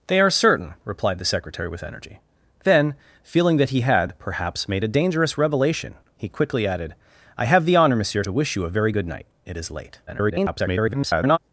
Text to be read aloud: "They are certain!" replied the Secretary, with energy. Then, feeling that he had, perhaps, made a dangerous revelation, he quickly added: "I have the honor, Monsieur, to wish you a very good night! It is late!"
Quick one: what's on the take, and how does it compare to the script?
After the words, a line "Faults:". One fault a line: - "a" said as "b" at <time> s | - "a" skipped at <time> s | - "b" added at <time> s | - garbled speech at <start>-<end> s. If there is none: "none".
"They are certain!" replied the Secretary, with energy. Then, feeling that he had, perhaps, made a dangerous revelation, he quickly added: "I have the honor, Monsieur, to wish you a very good night! It is late!" [garbled]
Faults:
- garbled speech at 10.1-11.4 s